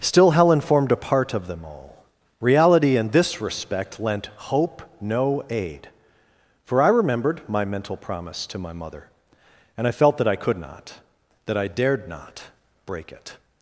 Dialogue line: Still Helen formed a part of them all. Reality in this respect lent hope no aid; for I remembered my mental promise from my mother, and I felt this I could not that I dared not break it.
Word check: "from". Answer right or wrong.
wrong